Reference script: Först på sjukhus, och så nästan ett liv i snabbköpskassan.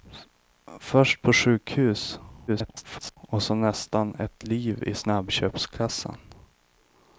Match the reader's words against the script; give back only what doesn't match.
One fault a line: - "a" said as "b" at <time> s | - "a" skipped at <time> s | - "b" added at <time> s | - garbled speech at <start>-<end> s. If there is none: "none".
- garbled speech at 2.5-3.2 s